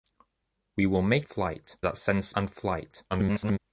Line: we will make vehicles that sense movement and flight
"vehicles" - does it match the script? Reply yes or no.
no